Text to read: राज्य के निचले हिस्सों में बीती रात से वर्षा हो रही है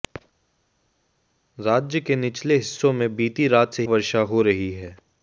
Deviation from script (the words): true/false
false